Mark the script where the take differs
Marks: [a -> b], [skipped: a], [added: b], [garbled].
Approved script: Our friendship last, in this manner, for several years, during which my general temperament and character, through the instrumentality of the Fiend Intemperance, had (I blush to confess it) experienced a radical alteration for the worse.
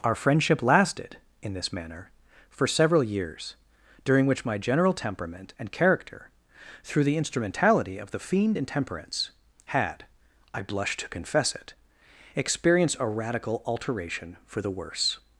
Our friendship [last, -> lasted] in this manner, for several years, during which my general temperament and character, through the instrumentality of the Fiend Intemperance, had (I blush to confess it) experienced a radical alteration for the worse.